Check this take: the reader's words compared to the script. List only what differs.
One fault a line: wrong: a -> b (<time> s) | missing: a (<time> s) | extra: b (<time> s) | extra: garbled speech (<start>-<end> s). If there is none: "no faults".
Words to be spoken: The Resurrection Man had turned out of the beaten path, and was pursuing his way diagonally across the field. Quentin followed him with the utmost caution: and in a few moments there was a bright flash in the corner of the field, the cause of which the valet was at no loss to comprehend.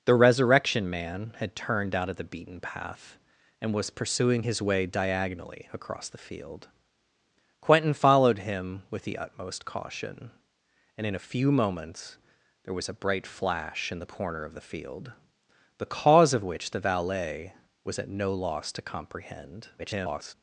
extra: garbled speech (19.8-20.3 s)